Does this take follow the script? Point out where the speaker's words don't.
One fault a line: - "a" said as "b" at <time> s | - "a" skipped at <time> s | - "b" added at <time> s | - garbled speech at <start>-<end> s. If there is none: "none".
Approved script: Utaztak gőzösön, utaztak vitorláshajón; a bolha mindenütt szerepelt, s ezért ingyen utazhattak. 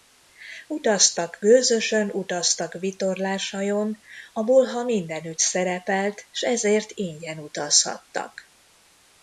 none